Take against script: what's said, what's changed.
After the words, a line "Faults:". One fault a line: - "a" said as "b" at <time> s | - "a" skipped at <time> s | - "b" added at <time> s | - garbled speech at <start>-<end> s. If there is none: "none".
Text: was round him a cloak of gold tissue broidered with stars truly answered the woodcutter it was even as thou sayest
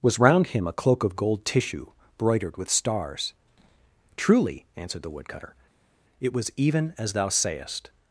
was round him a cloak of gold tissue broidered with stars truly answered the woodcutter it was even as thou sayest
Faults:
none